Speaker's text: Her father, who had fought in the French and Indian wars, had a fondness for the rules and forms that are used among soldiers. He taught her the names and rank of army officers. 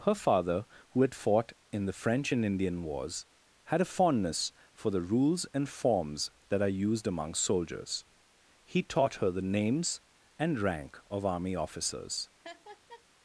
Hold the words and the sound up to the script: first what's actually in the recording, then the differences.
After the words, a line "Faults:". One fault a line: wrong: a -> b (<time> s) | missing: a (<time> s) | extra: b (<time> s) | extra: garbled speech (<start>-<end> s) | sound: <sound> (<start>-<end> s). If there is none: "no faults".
Her father, who had fought in the French and Indian wars, had a fondness for the rules and forms that are used among soldiers. He taught her the names and rank of army officers.
Faults:
sound: laugh (12.4-13.0 s)